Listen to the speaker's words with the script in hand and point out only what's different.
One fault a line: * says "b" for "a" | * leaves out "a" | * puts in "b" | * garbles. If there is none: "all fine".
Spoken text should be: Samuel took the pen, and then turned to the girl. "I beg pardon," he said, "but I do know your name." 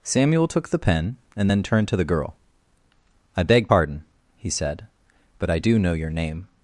all fine